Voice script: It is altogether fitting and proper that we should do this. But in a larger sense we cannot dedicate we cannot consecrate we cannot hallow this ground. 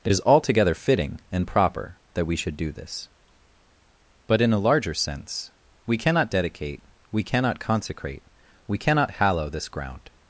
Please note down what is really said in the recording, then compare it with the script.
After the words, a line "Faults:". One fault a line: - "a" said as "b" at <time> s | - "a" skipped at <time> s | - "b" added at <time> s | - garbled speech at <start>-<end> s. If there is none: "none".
It is altogether fitting and proper that we should do this. But in a larger sense we cannot dedicate we cannot consecrate we cannot hallow this ground.
Faults:
none